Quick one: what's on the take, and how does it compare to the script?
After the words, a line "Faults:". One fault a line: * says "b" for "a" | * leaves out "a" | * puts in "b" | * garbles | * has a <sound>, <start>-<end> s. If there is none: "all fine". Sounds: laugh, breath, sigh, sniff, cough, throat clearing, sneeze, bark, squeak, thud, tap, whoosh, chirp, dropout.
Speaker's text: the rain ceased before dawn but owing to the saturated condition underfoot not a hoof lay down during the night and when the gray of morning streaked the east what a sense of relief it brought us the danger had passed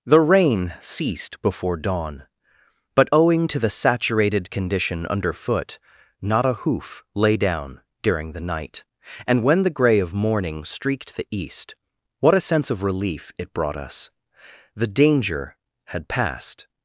the rain ceased before dawn but owing to the saturated condition underfoot not a hoof lay down during the night and when the gray of morning streaked the east what a sense of relief it brought us the danger had passed
Faults:
all fine